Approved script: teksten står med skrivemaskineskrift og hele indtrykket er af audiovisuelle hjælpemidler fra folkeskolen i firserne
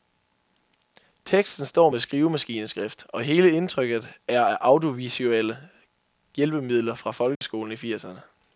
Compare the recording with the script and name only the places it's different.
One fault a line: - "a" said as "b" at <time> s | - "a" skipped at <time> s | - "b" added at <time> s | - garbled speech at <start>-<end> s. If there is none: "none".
none